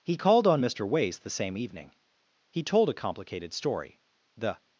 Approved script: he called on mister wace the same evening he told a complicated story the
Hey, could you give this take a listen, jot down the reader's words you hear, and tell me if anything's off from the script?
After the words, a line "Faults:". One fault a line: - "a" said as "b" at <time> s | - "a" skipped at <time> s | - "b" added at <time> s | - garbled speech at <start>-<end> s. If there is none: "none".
he called on mister wace the same evening he told a complicated story the
Faults:
none